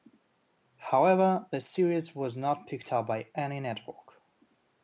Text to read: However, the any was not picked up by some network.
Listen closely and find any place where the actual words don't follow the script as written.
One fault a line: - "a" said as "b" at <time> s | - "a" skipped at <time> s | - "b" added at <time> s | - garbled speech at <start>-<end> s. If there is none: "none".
- "any" said as "series" at 1.6 s
- "some" said as "any" at 3.3 s